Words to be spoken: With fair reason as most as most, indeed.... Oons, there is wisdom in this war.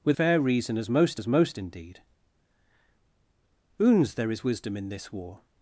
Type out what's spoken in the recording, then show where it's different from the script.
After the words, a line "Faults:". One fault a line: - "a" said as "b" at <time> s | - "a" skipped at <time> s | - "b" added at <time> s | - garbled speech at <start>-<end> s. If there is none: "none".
With fair reason as most as most, indeed.... Oons, there is wisdom in this war.
Faults:
none